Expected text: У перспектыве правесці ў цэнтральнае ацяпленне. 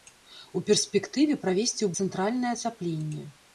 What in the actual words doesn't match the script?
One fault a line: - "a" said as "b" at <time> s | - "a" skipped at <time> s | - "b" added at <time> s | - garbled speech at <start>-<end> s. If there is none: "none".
none